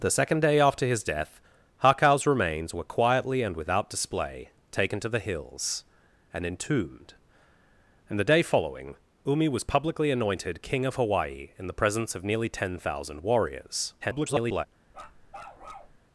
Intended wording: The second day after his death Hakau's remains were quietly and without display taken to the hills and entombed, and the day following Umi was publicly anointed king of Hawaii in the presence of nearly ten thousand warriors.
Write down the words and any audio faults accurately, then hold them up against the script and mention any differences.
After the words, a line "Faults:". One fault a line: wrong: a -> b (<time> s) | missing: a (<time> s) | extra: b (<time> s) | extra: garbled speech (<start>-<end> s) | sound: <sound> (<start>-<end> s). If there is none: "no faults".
The second day after his death Hakau's remains were quietly and without display taken to the hills and entombed, and the day following Umi was publicly anointed king of Hawaii in the presence of nearly ten thousand warriors. [garbled]
Faults:
extra: garbled speech (14.0-14.7 s)
sound: bark (14.9-16.0 s)